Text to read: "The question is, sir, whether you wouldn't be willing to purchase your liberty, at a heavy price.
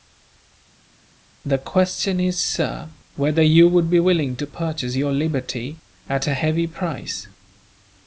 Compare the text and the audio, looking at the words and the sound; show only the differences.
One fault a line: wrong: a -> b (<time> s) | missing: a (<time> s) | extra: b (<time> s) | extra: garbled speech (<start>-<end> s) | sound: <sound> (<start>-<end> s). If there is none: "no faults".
wrong: wouldn't -> would (3.7 s)